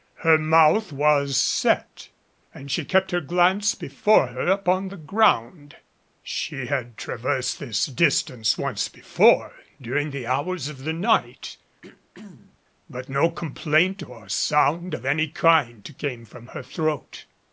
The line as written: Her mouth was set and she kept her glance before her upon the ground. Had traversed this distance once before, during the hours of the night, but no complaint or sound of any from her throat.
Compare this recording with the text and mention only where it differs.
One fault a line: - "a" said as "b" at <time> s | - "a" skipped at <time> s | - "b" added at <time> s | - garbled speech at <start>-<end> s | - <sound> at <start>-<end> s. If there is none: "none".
- "She" added at 6.2 s
- throat clearing at 11.8-12.6 s
- "kind came" added at 15.3 s